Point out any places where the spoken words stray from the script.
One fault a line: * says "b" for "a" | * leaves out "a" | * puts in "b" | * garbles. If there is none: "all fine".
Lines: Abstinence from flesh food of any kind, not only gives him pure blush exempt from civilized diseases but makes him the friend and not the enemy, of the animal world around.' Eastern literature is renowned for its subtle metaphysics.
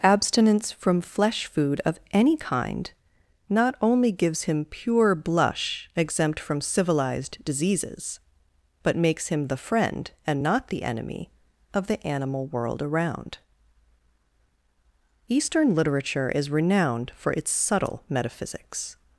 all fine